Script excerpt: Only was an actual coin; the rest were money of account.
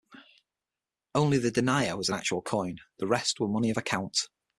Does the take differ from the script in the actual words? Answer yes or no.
yes